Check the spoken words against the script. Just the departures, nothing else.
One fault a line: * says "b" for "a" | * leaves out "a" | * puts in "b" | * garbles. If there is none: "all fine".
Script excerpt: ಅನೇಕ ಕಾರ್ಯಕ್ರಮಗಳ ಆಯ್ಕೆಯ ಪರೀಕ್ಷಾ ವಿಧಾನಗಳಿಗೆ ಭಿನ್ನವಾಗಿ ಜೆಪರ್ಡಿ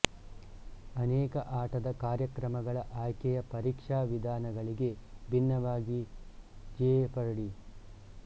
* puts in "ಆಟದ"